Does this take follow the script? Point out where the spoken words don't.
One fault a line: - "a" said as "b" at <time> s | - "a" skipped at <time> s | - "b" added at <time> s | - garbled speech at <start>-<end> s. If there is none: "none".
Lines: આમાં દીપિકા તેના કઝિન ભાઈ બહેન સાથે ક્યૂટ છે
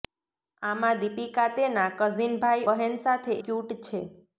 none